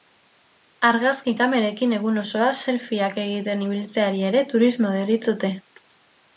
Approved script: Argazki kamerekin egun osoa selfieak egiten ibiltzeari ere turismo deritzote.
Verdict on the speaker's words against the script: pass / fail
pass